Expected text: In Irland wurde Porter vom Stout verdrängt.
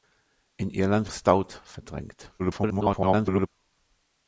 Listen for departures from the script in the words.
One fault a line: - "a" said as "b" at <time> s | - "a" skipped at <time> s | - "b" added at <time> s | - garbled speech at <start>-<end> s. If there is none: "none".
- "wurde Porter vom" skipped at 1.1 s
- garbled speech at 2.4-3.5 s